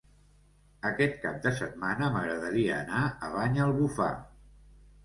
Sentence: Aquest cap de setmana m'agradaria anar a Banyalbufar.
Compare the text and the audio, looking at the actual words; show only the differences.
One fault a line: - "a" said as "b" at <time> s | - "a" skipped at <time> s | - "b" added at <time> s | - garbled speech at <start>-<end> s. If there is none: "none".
none